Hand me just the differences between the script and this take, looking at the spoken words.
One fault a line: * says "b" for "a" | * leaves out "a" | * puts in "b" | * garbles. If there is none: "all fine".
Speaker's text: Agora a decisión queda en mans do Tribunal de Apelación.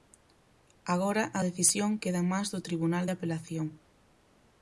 all fine